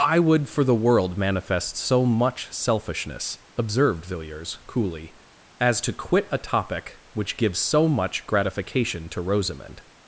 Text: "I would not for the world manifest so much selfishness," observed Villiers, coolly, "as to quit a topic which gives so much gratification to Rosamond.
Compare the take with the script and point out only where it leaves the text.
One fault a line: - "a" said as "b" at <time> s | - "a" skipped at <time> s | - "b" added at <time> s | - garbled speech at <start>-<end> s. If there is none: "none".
- "not" skipped at 0.5 s